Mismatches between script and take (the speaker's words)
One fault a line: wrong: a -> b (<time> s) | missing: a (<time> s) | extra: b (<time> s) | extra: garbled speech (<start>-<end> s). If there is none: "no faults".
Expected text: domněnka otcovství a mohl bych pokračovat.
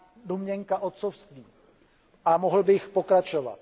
no faults